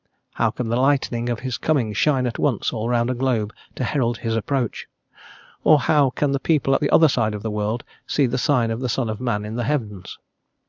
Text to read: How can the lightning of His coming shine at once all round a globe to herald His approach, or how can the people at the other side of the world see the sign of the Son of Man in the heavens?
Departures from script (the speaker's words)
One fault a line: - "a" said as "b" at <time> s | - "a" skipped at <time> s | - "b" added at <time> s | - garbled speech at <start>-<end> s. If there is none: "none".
none